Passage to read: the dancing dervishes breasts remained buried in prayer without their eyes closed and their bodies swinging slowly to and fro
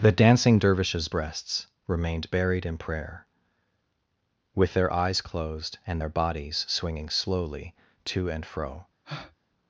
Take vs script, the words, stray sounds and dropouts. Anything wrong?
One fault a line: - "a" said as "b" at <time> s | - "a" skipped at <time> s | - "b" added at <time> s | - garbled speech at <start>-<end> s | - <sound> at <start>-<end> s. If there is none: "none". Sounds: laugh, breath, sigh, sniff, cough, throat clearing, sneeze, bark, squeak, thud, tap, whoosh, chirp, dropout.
- "without" said as "with" at 4.5 s
- breath at 9.0-9.4 s